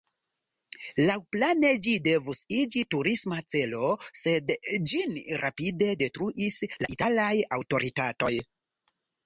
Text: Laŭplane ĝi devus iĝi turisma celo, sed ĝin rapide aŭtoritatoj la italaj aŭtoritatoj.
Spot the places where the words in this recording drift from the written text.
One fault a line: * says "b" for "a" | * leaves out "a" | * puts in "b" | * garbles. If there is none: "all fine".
* says "detruis" for "aŭtoritatoj"